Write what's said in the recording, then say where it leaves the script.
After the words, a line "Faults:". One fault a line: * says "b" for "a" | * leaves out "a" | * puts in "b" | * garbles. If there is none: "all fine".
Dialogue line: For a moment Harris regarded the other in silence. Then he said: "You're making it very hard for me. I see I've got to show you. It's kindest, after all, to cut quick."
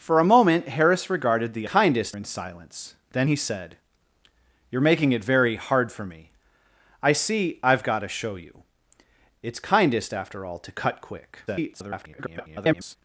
For a moment Harris regarded the kindest in silence. Then he said: "You're making it very hard for me. I see I've got to show you. It's kindest, after all, to cut quick." [garbled]
Faults:
* says "kindest" for "other"
* garbles